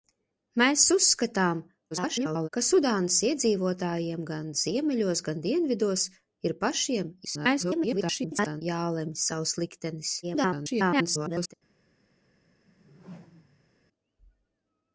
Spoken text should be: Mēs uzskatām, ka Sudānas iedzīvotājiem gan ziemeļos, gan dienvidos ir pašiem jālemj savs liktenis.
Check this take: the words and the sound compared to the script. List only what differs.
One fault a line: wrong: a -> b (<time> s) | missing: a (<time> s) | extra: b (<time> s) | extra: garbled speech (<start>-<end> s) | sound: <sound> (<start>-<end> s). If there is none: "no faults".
extra: garbled speech (1.9-2.5 s)
extra: garbled speech (7.2-8.6 s)
extra: garbled speech (10.2-11.5 s)
sound: whoosh (12.6-13.7 s)